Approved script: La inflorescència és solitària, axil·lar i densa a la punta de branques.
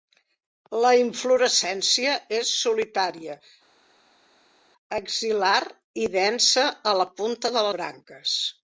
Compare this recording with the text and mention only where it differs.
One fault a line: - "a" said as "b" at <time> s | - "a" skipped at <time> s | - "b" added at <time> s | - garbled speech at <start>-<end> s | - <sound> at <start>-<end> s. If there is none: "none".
none